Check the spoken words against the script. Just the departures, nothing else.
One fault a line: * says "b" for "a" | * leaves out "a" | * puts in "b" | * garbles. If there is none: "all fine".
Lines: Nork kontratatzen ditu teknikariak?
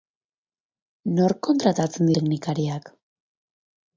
* leaves out "ditu"